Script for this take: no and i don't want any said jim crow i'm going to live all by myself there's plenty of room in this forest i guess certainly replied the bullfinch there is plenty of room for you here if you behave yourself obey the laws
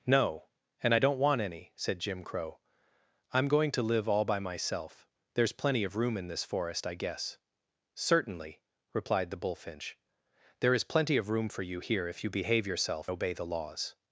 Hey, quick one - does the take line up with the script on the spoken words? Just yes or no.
yes